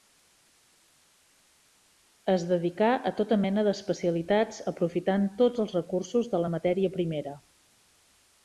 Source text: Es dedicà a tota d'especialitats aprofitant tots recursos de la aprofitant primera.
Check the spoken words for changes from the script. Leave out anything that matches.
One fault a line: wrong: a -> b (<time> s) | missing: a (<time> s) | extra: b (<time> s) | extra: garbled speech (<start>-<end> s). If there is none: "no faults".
extra: mena (3.4 s)
extra: els (5.6 s)
wrong: aprofitant -> matèria (6.6 s)